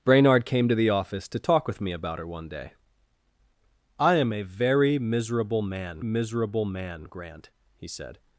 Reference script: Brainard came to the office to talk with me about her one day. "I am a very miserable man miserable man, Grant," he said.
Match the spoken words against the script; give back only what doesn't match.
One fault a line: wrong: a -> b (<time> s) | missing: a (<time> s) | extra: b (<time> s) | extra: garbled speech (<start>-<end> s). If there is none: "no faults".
no faults